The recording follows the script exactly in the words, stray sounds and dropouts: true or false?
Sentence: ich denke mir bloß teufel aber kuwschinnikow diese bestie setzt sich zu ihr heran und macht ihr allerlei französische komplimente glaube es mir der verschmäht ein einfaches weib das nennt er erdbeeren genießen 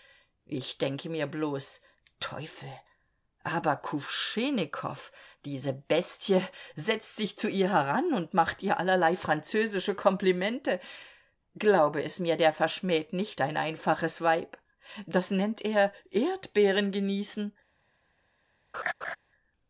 false